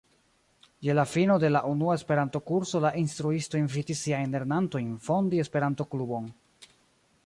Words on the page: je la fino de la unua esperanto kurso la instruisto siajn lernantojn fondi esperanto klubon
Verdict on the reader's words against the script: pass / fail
fail